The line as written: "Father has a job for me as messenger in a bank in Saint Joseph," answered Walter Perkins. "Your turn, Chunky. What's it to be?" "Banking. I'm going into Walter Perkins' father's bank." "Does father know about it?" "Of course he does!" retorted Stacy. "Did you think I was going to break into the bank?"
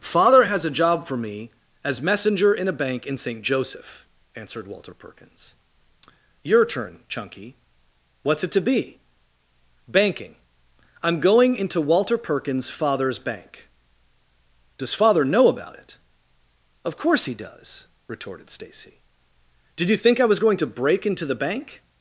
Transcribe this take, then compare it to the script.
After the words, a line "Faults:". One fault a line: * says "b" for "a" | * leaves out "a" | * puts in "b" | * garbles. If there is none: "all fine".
"Father has a job for me as messenger in a bank in Saint Joseph," answered Walter Perkins. "Your turn, Chunky. What's it to be?" "Banking. I'm going into Walter Perkins' father's bank." "Does father know about it?" "Of course he does!" retorted Stacy. "Did you think I was going to break into the bank?"
Faults:
all fine